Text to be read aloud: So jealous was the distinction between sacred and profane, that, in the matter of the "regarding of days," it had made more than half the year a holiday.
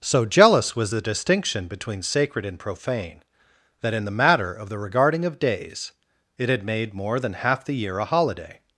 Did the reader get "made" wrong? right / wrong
right